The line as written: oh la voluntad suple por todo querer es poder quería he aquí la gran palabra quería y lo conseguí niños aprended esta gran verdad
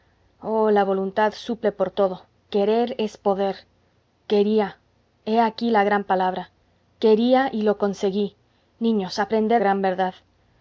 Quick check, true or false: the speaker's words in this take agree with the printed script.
false